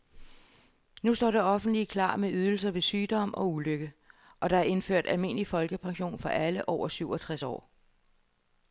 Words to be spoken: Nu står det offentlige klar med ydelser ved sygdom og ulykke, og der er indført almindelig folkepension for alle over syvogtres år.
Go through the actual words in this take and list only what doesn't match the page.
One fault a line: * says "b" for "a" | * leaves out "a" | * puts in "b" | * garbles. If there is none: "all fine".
all fine